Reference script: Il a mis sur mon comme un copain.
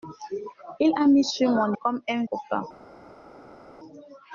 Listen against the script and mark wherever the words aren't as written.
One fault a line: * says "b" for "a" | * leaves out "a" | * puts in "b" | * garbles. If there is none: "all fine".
all fine